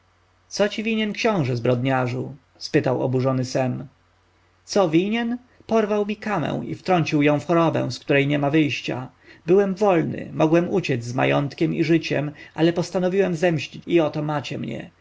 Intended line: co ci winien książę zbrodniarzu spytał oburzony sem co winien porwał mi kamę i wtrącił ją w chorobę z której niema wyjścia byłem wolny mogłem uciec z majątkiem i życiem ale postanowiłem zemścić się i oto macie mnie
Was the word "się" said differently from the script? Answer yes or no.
yes